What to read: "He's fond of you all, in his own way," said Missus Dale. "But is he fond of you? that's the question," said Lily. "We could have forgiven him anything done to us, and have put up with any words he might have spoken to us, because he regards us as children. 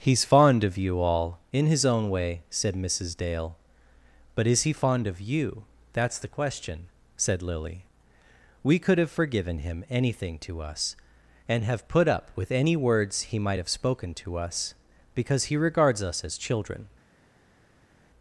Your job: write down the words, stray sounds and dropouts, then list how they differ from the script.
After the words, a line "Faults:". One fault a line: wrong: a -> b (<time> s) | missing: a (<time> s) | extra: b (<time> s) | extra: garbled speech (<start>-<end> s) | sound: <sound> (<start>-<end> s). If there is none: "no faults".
"He's fond of you all, in his own way," said Missus Dale. "But is he fond of you? that's the question," said Lily. "We could have forgiven him anything to us, and have put up with any words he might have spoken to us, because he regards us as children.
Faults:
missing: done (10.4 s)